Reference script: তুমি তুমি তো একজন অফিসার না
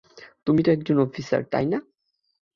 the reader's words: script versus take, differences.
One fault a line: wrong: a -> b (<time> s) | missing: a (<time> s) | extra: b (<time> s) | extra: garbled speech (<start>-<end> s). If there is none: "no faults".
missing: তুমি (0.6 s)
extra: তাই (1.5 s)